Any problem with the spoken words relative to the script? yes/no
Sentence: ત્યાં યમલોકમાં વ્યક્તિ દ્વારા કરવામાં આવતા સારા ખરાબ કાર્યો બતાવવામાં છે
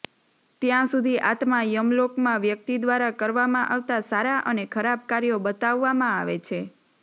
yes